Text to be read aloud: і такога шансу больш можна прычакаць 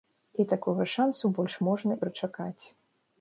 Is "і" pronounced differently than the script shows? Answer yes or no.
no